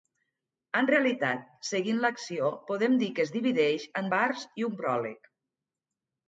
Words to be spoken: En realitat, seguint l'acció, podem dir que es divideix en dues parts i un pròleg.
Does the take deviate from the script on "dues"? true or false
true